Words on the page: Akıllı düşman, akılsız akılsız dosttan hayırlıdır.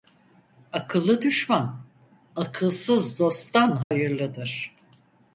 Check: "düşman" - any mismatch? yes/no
no